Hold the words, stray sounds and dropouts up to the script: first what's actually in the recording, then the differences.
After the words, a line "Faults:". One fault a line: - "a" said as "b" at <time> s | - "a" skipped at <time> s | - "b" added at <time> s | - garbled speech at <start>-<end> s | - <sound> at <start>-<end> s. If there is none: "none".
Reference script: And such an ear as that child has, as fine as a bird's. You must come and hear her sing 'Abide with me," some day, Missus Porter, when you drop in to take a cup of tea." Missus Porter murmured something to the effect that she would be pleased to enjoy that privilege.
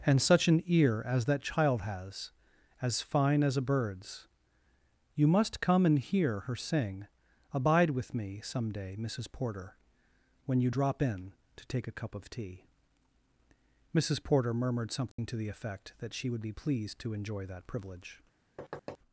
And such an ear as that child has, as fine as a bird's. You must come and hear her sing 'Abide with me," some day, Missus Porter, when you drop in to take a cup of tea." Missus Porter murmured something to the effect that she would be pleased to enjoy that privilege.
Faults:
- dropout at 15.1-15.2 s
- thud at 18.6-19.0 s